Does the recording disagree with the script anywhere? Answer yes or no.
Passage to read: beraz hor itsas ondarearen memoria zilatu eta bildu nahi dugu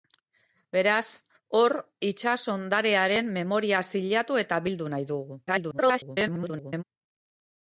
yes